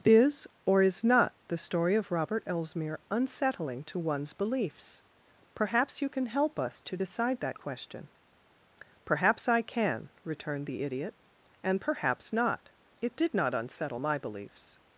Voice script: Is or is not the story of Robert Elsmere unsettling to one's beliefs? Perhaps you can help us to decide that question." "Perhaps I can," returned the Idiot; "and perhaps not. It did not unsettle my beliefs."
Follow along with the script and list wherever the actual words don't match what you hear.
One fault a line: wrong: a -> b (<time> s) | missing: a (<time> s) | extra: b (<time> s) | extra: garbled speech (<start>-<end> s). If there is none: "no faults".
no faults